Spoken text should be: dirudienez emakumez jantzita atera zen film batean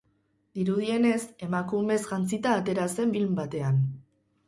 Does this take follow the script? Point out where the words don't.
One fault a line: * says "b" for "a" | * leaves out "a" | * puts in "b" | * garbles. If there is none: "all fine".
all fine